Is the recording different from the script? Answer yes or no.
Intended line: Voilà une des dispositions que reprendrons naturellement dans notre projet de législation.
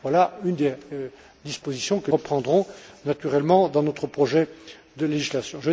no